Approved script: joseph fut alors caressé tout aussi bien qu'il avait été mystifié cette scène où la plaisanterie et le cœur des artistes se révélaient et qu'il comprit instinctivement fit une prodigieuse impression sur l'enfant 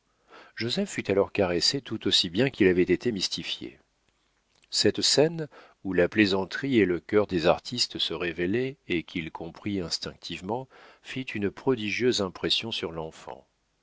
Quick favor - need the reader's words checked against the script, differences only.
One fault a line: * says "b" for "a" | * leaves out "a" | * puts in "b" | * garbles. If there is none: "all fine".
all fine